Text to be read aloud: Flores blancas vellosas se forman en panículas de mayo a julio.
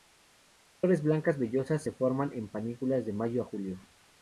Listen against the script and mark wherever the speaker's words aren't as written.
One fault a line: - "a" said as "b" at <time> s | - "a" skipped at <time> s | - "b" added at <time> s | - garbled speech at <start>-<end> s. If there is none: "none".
none